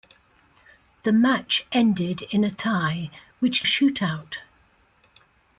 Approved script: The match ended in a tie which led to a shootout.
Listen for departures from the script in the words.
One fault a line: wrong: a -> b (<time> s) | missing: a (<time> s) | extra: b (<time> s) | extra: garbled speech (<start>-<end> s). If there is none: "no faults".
missing: led to (3.7 s)